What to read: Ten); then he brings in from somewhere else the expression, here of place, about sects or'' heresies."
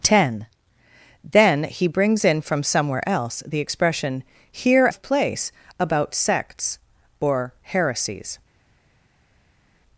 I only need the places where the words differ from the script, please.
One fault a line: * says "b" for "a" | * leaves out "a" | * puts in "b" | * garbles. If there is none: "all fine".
all fine